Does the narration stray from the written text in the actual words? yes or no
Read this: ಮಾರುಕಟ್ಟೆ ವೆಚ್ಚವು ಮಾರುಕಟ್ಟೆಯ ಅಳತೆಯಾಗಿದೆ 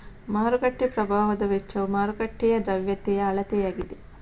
yes